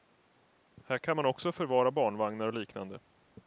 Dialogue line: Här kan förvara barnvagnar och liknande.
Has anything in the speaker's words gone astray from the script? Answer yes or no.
yes